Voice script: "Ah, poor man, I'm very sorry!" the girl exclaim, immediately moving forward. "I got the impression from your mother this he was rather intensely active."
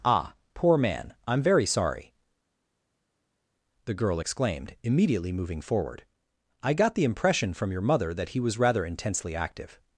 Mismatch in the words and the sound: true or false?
true